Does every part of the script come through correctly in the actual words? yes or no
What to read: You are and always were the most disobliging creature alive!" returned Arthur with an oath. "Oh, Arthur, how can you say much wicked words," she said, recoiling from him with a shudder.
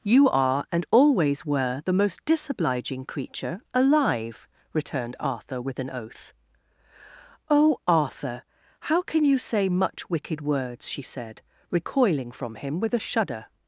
yes